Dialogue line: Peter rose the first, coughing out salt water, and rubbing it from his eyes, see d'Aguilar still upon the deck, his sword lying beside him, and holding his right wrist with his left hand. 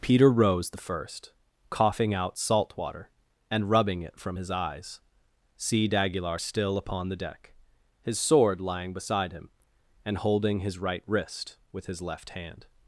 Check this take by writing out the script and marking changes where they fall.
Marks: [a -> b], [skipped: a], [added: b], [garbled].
Peter rose the first, coughing out salt water, and rubbing it from his eyes, see d'Aguilar still upon the deck, his sword lying beside him, and holding his right wrist with his left hand.